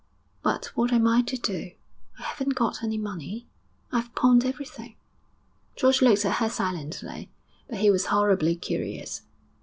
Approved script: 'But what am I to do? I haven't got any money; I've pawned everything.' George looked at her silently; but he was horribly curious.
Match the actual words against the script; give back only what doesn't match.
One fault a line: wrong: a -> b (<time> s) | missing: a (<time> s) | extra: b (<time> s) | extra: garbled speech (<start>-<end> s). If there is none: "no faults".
no faults